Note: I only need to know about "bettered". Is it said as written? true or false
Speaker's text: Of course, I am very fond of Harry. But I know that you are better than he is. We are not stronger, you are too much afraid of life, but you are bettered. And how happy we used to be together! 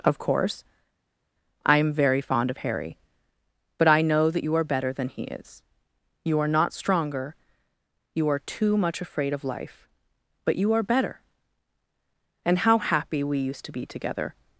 false